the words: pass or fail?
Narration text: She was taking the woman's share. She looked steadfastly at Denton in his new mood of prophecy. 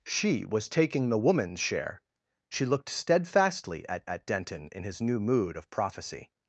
fail